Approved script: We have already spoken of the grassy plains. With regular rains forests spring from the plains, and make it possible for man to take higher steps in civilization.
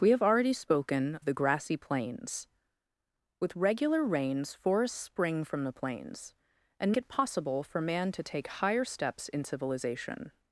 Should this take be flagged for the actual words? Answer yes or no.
yes